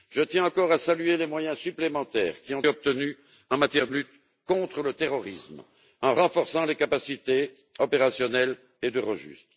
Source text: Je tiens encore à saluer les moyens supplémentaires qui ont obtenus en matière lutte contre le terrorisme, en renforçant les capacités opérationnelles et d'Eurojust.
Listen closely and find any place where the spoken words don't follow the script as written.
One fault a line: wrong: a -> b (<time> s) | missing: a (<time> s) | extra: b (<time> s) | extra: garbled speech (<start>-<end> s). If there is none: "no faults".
no faults